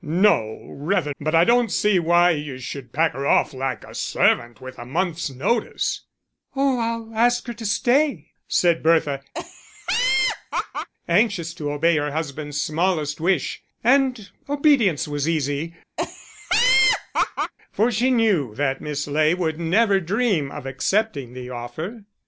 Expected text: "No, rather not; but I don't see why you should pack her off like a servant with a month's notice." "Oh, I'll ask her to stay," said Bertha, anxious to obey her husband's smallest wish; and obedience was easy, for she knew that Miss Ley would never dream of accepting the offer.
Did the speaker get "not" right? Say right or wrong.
wrong